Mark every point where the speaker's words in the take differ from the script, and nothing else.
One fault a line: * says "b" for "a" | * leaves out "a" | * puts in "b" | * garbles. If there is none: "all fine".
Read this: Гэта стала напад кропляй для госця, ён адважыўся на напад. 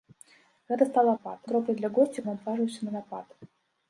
all fine